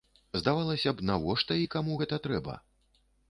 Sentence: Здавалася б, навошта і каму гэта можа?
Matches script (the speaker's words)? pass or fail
fail